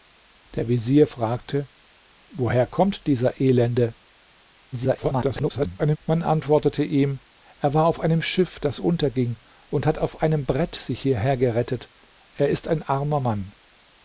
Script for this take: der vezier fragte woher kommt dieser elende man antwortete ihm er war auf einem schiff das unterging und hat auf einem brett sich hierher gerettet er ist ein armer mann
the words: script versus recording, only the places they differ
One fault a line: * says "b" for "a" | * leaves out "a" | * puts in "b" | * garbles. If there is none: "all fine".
* garbles